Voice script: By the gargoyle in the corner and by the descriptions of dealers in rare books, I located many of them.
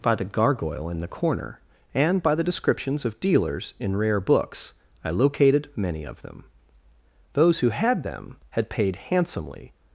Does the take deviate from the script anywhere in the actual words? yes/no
yes